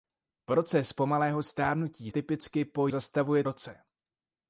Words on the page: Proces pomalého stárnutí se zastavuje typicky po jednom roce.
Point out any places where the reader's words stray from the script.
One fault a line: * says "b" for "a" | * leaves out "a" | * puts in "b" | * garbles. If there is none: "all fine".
* leaves out "se zastavuje"
* says "zastavuje" for "jednom"